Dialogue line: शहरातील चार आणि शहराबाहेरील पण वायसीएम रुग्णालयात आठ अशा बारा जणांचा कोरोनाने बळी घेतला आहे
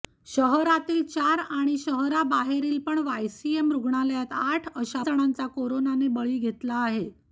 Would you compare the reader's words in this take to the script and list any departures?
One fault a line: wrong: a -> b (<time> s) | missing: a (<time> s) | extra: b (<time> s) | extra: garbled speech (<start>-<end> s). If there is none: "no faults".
missing: बारा (5.0 s)